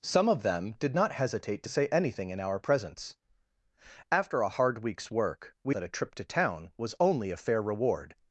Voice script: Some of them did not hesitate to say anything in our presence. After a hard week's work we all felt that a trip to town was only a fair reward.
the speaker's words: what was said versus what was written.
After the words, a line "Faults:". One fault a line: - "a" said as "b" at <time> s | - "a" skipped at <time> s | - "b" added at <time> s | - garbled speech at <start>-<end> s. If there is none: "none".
Some of them did not hesitate to say anything in our presence. After a hard week's work we that a trip to town was only a fair reward.
Faults:
- "all felt" skipped at 5.7 s